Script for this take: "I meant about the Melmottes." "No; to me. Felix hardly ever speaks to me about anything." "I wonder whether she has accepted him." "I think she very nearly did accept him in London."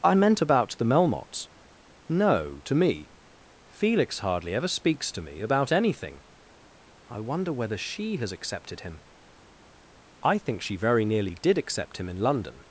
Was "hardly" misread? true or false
false